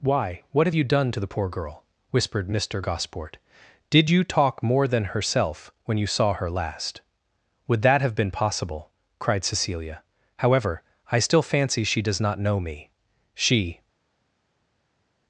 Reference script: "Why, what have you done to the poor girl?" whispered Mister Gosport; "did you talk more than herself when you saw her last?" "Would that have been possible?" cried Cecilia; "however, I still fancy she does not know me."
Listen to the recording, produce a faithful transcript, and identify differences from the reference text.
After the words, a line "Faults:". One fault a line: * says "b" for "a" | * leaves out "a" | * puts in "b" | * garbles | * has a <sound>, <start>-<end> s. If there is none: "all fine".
"Why, what have you done to the poor girl?" whispered Mister Gosport; "did you talk more than herself when you saw her last?" "Would that have been possible?" cried Cecilia; "however, I still fancy she does not know me." She
Faults:
* puts in "She"